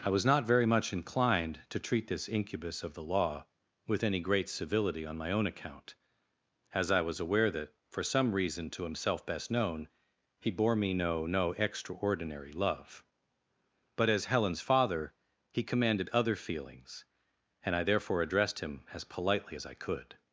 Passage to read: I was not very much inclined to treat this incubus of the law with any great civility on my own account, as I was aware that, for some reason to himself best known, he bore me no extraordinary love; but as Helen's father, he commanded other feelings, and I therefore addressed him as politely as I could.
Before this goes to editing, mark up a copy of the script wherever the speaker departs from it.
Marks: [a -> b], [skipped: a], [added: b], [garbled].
I was not very much inclined to treat this incubus of the law with any great civility on my own account, as I was aware that, for some reason to himself best known, he bore me no [added: no] extraordinary love; but as Helen's father, he commanded other feelings, and I therefore addressed him as politely as I could.